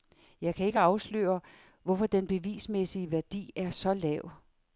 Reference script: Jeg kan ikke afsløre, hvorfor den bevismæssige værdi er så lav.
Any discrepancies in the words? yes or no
no